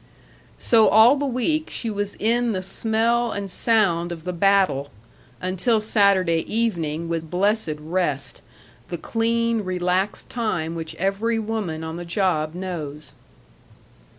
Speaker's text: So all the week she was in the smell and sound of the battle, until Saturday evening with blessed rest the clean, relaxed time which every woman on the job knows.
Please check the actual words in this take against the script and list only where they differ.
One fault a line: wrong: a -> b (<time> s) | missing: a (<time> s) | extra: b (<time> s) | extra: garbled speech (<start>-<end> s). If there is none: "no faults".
no faults